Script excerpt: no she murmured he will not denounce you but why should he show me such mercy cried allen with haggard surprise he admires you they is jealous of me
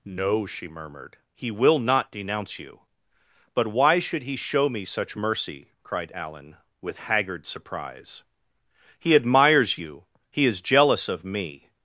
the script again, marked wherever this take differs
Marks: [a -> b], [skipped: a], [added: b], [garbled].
no she murmured he will not denounce you but why should he show me such mercy cried allen with haggard surprise he admires you [they -> he] is jealous of me